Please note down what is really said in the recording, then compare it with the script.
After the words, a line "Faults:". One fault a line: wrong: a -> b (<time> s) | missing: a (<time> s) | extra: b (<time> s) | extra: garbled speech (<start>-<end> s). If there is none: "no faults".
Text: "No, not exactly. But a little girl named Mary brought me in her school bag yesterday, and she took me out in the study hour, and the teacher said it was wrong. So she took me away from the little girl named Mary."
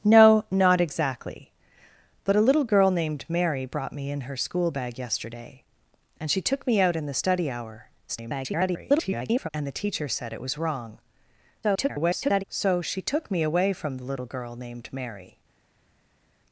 "No, not exactly. But a little girl named Mary brought me in her school bag yesterday, and she took me out in the study hour, [garbled] and the teacher said it was wrong. [garbled] So she took me away from the little girl named Mary."
Faults:
extra: garbled speech (8.1-9.5 s)
extra: garbled speech (11.6-12.4 s)